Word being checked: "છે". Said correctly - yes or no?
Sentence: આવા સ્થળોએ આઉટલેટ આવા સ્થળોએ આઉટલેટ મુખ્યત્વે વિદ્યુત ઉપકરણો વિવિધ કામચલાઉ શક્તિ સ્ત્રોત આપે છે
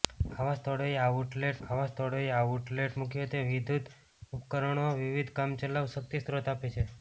yes